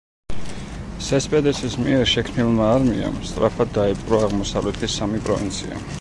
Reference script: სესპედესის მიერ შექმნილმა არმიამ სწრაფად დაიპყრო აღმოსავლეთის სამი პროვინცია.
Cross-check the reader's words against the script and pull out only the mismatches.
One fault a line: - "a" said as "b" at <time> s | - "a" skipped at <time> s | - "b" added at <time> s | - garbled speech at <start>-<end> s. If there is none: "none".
none